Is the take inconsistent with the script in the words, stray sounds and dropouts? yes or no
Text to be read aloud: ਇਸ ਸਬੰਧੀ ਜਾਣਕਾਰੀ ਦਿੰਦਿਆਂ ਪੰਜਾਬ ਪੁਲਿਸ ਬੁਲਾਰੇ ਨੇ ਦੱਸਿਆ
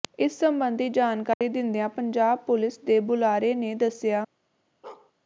yes